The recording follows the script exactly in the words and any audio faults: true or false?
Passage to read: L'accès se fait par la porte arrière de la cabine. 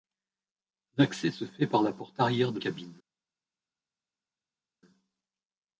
false